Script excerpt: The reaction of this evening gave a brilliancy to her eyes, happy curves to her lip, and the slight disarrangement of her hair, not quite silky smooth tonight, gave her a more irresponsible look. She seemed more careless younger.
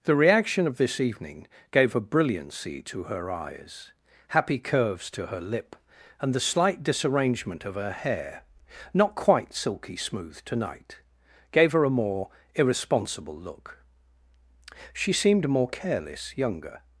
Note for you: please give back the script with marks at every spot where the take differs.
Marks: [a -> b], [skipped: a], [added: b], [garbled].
The reaction of this evening gave a brilliancy to her eyes, happy curves to her lip, and the slight disarrangement of her hair, not quite silky smooth tonight, gave her a more irresponsible look. She seemed more careless younger.